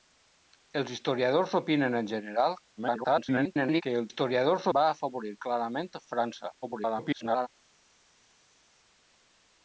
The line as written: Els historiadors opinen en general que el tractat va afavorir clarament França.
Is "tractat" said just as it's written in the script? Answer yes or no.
no